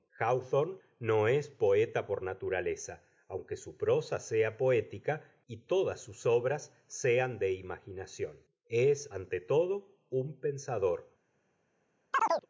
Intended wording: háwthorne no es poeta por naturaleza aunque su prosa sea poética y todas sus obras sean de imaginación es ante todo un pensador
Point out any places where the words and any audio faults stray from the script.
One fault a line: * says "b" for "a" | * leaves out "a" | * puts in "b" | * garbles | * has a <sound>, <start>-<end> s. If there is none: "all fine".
* has a chirp, 12.1-12.5 s